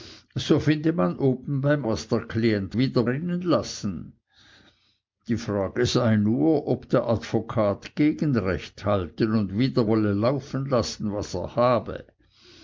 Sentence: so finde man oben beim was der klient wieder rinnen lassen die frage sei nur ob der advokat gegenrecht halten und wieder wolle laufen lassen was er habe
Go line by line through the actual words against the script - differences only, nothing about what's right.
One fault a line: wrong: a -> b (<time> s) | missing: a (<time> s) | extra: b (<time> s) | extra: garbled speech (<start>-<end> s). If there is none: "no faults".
no faults